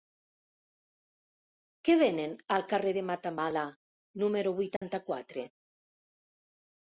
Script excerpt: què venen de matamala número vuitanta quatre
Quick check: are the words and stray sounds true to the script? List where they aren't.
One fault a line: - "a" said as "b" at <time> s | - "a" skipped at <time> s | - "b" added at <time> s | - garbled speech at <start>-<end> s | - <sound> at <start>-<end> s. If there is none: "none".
- "al carrer" added at 2.5 s
- dropout at 4.8-4.8 s